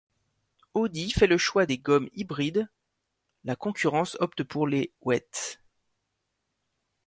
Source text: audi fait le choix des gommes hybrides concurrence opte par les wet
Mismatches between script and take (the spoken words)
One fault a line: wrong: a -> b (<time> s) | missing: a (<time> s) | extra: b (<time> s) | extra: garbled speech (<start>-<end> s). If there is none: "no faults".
extra: la (3.4 s)
wrong: par -> pour (4.4 s)